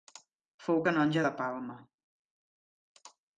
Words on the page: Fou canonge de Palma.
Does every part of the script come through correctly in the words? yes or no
yes